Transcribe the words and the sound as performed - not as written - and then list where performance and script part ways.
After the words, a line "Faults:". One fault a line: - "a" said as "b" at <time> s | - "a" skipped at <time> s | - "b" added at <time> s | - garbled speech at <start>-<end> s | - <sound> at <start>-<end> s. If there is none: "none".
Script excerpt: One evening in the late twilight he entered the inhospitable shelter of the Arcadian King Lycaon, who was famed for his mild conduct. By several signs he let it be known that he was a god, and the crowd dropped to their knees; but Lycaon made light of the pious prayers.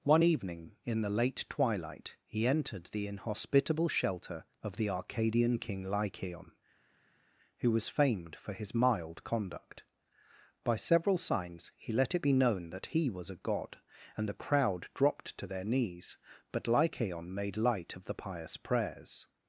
One evening in the late twilight he entered the inhospitable shelter of the Arcadian King Lycaon, who was famed for his mild conduct. By several signs he let it be known that he was a god, and the crowd dropped to their knees; but Lycaon made light of the pious prayers.
Faults:
none